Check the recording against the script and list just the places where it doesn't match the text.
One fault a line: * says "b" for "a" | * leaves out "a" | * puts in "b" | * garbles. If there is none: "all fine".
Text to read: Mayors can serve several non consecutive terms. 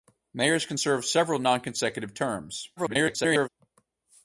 * garbles